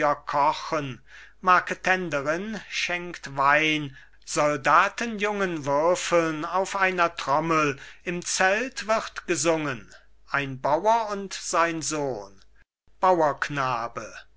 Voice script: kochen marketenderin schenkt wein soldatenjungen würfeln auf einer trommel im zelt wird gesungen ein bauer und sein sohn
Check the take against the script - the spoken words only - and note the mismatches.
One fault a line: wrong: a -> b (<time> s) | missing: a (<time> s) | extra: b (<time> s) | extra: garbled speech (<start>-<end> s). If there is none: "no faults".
no faults